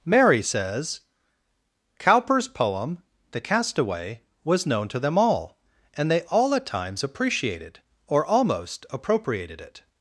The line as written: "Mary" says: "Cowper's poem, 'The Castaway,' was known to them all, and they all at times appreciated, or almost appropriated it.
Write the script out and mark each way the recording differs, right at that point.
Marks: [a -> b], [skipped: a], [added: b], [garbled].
"Mary" says: "Cowper's poem, 'The Castaway,' was known to them all, and they all at times appreciated, or almost appropriated it.